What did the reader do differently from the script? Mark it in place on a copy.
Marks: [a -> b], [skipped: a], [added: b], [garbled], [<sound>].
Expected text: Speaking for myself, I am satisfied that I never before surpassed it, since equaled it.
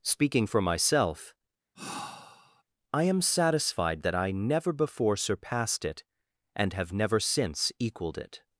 Speaking for myself, [sigh] I am satisfied that I never before surpassed it, [added: and have never] since equaled it.